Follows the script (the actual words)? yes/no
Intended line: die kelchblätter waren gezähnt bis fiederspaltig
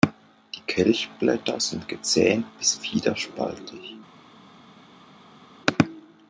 no